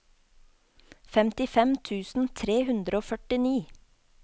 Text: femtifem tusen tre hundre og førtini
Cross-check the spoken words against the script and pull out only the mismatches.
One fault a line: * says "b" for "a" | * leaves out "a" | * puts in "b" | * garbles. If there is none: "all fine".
all fine